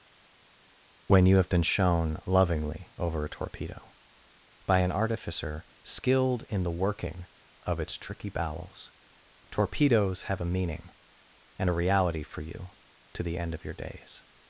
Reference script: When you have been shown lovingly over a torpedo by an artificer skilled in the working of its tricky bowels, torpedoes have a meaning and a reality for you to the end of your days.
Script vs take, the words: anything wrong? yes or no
no